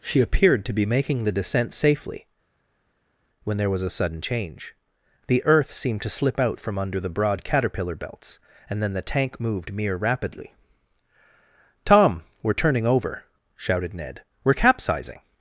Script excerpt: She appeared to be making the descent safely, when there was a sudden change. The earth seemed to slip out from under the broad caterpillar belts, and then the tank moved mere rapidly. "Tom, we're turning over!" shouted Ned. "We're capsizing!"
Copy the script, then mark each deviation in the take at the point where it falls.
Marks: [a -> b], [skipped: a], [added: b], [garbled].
She appeared to be making the descent safely, when there was a sudden change. The earth seemed to slip out from under the broad caterpillar belts, and then the tank moved mere rapidly. "Tom, we're turning over!" shouted Ned. "We're capsizing!"